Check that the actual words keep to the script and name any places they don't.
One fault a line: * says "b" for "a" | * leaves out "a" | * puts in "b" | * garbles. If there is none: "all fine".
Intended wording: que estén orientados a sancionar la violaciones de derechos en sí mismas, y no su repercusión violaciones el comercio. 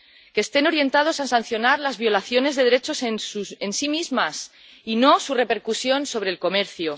* says "las" for "la"
* says "sobre" for "violaciones"